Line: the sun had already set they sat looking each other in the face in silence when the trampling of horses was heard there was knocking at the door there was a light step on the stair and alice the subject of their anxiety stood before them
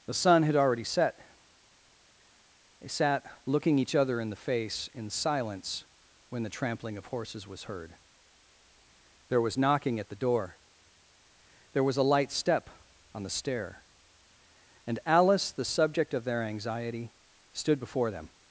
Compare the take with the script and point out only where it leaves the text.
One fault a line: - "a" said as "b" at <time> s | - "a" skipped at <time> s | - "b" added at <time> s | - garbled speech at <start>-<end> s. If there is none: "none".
none